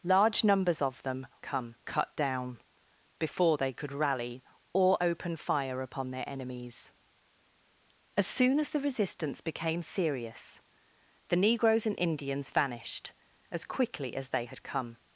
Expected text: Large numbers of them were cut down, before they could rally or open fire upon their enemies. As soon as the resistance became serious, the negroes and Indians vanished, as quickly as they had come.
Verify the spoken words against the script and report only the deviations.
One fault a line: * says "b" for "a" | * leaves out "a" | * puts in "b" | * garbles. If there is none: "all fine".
* says "come" for "were"